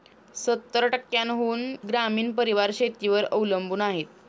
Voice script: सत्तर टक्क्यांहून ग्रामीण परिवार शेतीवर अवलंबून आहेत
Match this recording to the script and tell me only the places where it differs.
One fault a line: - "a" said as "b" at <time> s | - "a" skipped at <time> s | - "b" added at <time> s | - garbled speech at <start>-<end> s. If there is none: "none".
none